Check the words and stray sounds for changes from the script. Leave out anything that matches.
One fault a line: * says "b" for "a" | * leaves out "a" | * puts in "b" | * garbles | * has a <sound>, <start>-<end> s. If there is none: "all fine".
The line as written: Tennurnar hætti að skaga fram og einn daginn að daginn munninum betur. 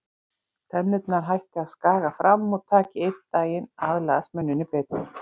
* puts in "taki"
* says "aðlagast" for "daginn"